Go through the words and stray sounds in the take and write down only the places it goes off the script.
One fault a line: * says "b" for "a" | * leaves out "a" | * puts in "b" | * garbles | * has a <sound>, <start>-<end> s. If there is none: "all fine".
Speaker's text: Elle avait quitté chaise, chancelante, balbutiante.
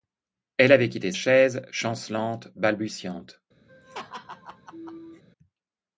* has a laugh, 3.7-5.2 s